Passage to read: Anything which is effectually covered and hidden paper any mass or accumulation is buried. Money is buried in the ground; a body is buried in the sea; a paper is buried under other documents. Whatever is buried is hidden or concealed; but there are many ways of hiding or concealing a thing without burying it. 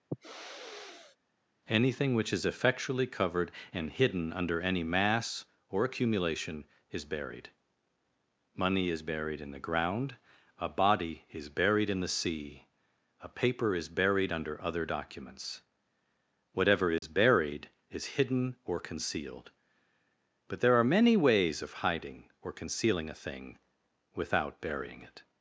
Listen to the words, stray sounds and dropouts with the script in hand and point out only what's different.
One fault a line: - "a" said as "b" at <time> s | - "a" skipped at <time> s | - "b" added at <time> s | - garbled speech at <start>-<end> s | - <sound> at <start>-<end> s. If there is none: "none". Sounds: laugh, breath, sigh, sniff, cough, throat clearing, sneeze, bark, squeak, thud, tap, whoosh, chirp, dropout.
- sniff at 0.1-1.2 s
- "paper" said as "under" at 4.3 s
- dropout at 17.0-17.0 s